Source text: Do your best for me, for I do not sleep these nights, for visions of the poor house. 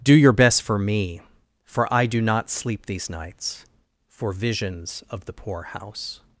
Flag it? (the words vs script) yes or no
no